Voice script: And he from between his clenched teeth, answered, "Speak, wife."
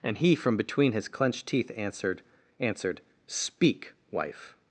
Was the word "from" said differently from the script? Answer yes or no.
no